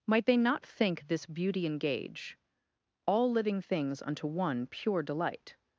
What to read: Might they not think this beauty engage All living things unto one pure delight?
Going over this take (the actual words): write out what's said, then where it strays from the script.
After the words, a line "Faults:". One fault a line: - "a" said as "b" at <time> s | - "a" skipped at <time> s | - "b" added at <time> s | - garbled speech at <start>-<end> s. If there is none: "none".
Might they not think this beauty engage All living things unto one pure delight?
Faults:
none